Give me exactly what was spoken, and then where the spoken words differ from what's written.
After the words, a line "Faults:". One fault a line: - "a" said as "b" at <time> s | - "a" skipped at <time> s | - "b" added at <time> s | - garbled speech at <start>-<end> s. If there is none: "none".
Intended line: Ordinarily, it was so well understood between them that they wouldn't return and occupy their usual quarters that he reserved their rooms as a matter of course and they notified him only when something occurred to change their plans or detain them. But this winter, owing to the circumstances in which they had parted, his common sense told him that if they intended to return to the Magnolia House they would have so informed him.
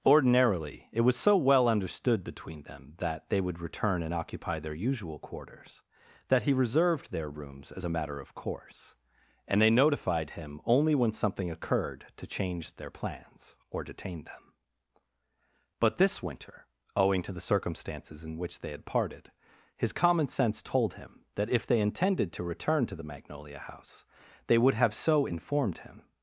Ordinarily, it was so well understood between them that they would return and occupy their usual quarters that he reserved their rooms as a matter of course and they notified him only when something occurred to change their plans or detain them. But this winter, owing to the circumstances in which they had parted, his common sense told him that if they intended to return to the Magnolia House they would have so informed him.
Faults:
- "wouldn't" said as "would" at 3.4 s